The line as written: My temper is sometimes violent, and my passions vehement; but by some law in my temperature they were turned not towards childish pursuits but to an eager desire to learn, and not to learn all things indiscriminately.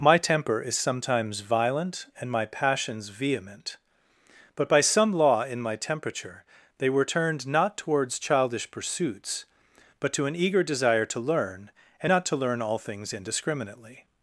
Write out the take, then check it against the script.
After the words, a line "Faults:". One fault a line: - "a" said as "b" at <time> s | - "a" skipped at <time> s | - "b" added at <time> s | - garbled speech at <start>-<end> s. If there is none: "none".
My temper is sometimes violent, and my passions vehement; but by some law in my temperature they were turned not towards childish pursuits but to an eager desire to learn, and not to learn all things indiscriminately.
Faults:
none